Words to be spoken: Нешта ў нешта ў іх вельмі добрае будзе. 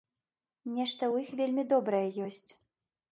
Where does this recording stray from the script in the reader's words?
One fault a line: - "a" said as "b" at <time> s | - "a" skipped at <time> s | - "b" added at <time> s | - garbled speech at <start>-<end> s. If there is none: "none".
- "нешта ў" skipped at 1.2 s
- "будзе" said as "ёсць" at 2.3 s